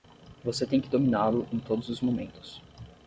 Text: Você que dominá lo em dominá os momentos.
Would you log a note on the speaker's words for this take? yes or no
yes